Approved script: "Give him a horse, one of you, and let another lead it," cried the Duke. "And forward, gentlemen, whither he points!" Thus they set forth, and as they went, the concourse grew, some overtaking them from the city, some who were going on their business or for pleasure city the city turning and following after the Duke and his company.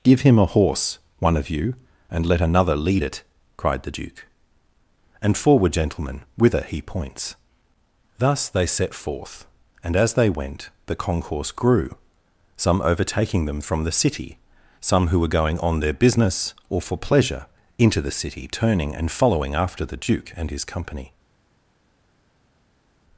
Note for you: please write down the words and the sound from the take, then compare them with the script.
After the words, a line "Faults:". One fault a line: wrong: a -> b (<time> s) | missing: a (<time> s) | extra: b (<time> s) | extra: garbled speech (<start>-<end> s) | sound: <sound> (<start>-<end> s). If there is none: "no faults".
"Give him a horse, one of you, and let another lead it," cried the Duke. "And forward, gentlemen, whither he points!" Thus they set forth, and as they went, the concourse grew, some overtaking them from the city, some who were going on their business or for pleasure into the city turning and following after the Duke and his company.
Faults:
wrong: city -> into (17.8 s)